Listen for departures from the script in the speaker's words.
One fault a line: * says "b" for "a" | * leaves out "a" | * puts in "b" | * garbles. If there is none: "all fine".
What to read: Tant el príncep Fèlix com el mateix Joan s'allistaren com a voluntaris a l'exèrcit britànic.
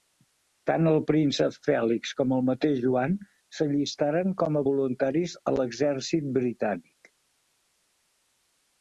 all fine